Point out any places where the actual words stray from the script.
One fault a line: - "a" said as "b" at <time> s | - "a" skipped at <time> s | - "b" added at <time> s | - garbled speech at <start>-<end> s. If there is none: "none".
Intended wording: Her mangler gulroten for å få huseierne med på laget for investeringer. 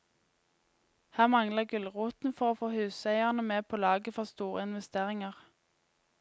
- "store" added at 4.3 s